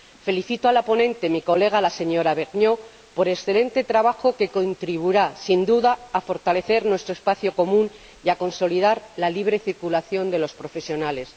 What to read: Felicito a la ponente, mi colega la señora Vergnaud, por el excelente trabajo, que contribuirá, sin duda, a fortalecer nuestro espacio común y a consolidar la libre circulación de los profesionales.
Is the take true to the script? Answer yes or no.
yes